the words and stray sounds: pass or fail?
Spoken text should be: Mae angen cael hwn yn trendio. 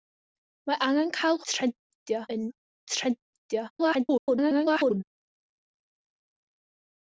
fail